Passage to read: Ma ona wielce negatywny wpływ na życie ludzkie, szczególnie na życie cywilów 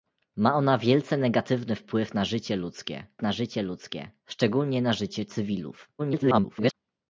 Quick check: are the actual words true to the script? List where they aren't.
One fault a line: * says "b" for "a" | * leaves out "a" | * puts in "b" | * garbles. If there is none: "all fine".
* puts in "na życie ludzkie"
* garbles